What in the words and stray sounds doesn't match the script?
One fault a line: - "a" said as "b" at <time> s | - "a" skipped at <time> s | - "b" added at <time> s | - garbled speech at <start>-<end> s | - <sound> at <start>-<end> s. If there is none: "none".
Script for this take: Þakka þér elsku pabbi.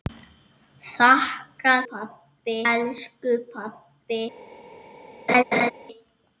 - "þér" said as "pabbi" at 1.9 s
- laugh at 5.3-5.7 s